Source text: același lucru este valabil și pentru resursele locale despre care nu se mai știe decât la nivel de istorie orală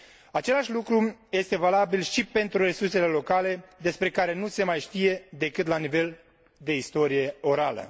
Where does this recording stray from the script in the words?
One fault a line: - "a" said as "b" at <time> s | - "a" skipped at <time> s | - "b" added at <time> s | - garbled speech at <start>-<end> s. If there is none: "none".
none